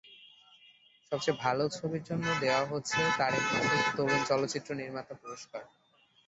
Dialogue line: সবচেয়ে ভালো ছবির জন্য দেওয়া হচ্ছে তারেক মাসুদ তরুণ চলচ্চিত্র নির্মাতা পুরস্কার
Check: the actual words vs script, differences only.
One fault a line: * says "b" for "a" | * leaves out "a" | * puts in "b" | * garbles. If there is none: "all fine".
all fine